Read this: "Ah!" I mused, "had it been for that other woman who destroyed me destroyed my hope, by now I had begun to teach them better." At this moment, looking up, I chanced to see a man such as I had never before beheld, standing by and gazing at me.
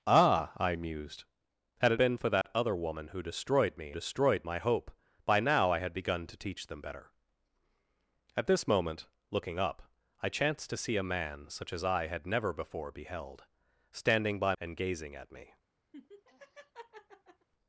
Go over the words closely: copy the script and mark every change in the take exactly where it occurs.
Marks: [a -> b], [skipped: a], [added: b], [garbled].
"Ah!" I mused, "had it been for that other woman who destroyed me destroyed my hope, by now I had begun to teach them better." At this moment, looking up, I chanced to see a man such as I had never before beheld, standing by and gazing at me.